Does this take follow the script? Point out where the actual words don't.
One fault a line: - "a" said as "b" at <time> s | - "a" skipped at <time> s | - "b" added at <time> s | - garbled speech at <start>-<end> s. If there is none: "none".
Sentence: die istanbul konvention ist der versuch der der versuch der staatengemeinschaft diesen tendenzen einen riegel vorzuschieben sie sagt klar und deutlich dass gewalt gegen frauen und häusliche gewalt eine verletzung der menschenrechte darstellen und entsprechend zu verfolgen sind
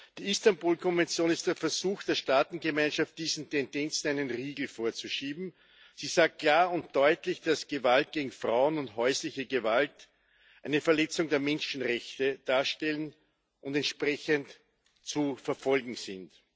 - "der versuch der" skipped at 2.1 s